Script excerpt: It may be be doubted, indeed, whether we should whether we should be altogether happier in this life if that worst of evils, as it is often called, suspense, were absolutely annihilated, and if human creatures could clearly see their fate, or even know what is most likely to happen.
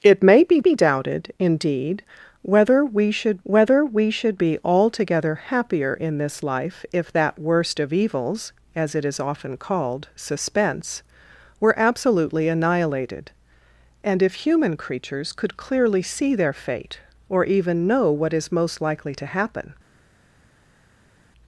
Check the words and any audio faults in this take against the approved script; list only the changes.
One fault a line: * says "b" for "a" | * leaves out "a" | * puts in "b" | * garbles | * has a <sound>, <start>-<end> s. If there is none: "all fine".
all fine